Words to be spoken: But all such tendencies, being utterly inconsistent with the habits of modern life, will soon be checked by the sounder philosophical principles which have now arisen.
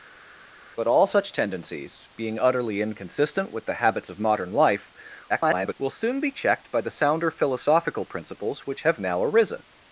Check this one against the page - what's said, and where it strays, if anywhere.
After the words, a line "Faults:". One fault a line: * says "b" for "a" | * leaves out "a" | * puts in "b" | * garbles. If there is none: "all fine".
But all such tendencies, being utterly inconsistent with the habits of modern life, [garbled] will soon be checked by the sounder philosophical principles which have now arisen.
Faults:
* garbles